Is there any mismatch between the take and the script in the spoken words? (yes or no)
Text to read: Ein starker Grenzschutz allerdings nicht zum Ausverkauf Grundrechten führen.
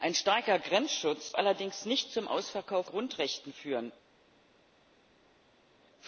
no